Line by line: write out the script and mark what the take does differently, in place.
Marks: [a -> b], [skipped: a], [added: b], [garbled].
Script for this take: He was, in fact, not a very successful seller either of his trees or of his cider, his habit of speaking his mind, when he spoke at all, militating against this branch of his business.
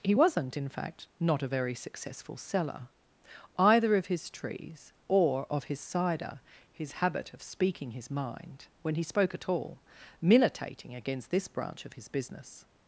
He [was, -> wasn't] in fact, not a very successful seller either of his trees or of his cider, his habit of speaking his mind, when he spoke at all, militating against this branch of his business.